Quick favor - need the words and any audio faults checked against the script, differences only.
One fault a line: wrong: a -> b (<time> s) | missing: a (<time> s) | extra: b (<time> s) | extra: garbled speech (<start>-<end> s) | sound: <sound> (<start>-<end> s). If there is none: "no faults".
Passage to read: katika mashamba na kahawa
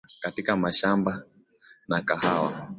no faults